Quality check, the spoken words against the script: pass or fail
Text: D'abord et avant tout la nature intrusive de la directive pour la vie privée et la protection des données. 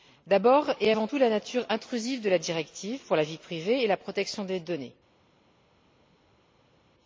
pass